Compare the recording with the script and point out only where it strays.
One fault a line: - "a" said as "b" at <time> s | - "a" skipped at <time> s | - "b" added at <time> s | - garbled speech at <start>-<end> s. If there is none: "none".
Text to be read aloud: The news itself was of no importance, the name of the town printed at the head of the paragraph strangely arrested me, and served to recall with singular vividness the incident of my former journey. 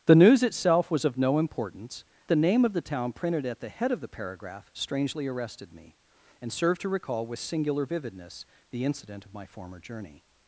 none